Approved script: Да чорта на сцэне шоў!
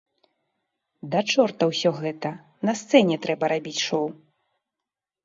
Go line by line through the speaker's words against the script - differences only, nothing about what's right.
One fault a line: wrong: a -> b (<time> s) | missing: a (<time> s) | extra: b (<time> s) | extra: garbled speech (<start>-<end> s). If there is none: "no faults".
extra: ўсё гэта (1.7 s)
extra: трэба рабіць (3.3 s)